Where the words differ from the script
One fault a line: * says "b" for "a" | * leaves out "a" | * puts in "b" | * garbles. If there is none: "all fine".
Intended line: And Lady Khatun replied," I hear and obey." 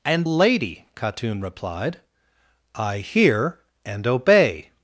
all fine